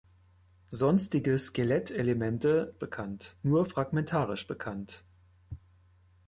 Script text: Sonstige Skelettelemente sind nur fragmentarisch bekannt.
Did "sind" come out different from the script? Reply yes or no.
yes